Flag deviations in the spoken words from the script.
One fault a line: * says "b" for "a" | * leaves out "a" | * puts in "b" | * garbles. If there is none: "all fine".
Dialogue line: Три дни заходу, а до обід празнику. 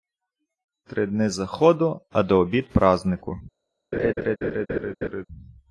all fine